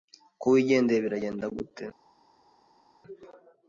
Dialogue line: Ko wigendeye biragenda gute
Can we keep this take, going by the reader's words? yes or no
yes